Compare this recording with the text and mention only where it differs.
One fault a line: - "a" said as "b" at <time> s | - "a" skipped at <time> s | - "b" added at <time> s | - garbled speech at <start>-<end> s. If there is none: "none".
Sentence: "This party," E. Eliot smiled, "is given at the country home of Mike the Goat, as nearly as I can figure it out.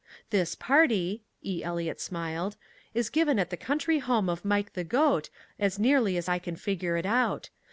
none